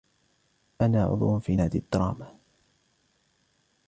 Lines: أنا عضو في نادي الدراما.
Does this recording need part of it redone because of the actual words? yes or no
no